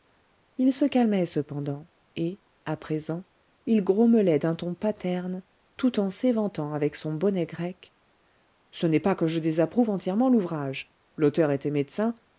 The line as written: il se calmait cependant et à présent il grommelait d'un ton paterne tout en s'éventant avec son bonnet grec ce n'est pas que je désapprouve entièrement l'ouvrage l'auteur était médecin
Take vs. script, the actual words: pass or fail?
pass